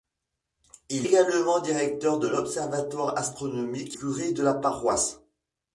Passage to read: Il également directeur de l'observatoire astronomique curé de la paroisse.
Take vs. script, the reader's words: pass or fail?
pass